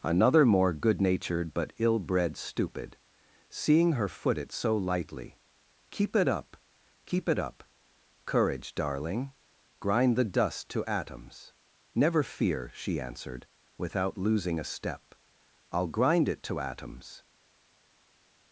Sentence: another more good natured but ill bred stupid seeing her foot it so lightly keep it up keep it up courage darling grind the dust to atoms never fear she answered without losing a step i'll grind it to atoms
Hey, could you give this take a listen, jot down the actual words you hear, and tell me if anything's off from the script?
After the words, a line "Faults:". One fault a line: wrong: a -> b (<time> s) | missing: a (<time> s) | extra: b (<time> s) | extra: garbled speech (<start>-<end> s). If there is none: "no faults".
another more good natured but ill bred stupid seeing her foot it so lightly keep it up keep it up courage darling grind the dust to atoms never fear she answered without losing a step i'll grind it to atoms
Faults:
no faults